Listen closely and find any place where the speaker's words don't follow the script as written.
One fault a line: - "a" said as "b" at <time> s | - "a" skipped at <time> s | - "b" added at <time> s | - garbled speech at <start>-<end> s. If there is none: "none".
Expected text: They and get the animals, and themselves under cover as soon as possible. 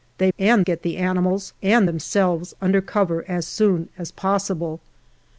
none